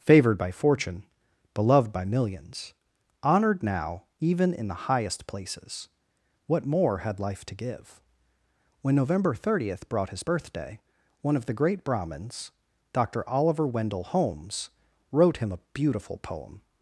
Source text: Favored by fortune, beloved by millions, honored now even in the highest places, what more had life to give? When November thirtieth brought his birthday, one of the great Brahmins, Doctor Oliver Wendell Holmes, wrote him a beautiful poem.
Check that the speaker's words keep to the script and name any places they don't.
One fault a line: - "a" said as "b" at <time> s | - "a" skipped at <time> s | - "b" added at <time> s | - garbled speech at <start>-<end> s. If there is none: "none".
none